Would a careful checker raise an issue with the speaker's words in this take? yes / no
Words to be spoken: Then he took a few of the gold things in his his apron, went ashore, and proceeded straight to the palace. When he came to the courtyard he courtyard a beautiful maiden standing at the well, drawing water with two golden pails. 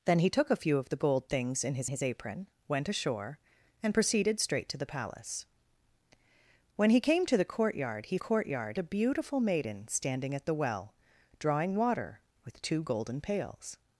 no